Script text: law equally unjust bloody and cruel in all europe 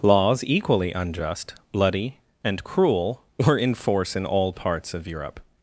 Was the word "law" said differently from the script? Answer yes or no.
yes